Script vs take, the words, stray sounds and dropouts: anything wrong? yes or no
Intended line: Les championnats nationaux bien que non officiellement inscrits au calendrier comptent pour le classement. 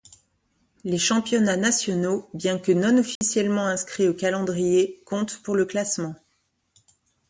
yes